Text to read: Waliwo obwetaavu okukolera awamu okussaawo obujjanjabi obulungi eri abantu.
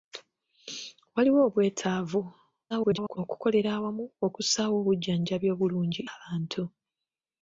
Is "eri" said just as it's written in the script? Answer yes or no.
no